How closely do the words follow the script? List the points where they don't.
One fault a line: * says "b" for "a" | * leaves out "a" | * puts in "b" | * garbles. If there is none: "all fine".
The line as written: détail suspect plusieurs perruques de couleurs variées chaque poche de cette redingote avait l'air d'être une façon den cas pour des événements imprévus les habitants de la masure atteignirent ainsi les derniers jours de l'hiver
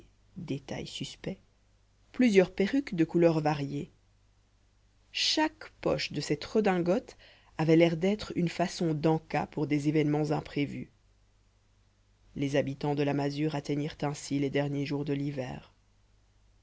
all fine